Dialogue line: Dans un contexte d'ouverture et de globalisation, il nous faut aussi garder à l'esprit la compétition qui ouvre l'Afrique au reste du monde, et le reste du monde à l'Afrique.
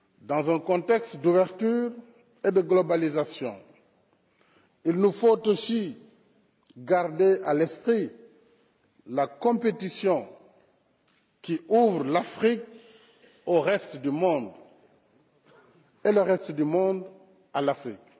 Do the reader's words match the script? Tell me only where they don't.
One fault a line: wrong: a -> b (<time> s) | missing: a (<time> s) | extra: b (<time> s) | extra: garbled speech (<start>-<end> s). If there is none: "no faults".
no faults